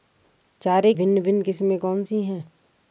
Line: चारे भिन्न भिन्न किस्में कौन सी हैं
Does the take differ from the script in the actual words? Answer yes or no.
no